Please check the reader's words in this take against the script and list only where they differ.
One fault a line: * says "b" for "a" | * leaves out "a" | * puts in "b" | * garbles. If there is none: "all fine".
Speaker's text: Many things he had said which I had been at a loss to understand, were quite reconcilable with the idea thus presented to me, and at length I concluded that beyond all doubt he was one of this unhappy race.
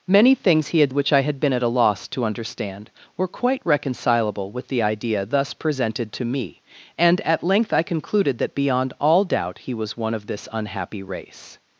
* leaves out "said"